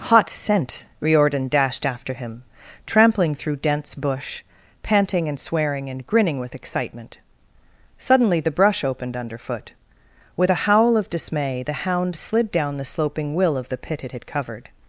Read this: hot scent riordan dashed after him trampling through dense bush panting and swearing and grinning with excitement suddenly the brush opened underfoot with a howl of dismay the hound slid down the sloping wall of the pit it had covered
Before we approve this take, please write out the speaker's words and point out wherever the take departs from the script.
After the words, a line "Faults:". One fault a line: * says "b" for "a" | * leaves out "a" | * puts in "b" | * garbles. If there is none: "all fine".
hot scent riordan dashed after him trampling through dense bush panting and swearing and grinning with excitement suddenly the brush opened underfoot with a howl of dismay the hound slid down the sloping will of the pit it had covered
Faults:
* says "will" for "wall"